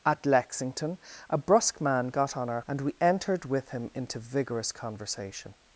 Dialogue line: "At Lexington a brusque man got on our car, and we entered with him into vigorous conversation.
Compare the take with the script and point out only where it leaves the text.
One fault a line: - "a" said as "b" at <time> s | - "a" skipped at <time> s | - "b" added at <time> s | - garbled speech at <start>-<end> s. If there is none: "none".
- "car" skipped at 2.6 s